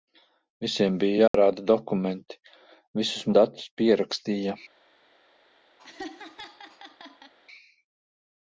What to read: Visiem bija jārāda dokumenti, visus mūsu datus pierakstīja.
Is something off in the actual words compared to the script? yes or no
yes